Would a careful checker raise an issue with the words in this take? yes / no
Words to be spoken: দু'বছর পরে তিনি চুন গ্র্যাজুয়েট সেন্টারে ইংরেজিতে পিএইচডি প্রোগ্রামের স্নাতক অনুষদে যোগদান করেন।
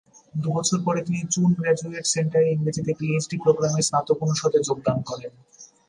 no